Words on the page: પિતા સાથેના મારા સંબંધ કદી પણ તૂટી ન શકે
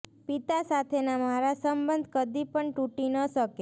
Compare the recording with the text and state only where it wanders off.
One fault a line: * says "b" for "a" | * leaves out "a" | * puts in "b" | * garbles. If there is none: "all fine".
all fine